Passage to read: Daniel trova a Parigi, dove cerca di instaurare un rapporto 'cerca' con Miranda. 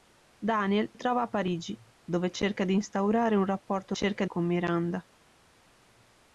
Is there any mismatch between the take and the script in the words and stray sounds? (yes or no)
no